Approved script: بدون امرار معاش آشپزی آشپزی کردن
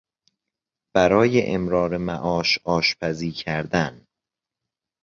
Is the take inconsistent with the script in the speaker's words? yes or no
yes